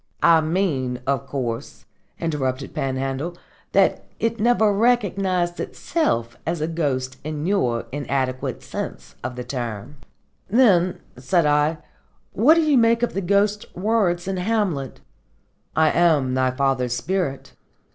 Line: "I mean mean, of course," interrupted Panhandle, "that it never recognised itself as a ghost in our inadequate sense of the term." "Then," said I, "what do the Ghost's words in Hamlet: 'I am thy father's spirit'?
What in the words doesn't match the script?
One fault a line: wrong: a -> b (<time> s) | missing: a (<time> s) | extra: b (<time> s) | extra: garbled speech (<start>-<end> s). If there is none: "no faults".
missing: mean (1.0 s)
wrong: our -> your (7.5 s)
extra: you make of (12.6 s)